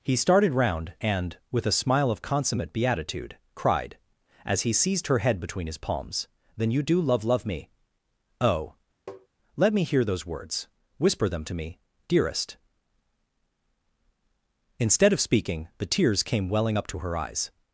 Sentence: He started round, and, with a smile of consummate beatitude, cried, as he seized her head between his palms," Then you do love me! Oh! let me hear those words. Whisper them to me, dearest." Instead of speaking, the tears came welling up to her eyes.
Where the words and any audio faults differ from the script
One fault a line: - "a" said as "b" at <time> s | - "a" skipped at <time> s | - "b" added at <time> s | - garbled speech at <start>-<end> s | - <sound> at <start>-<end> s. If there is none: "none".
- "love" added at 7.2 s
- tap at 9.1-9.3 s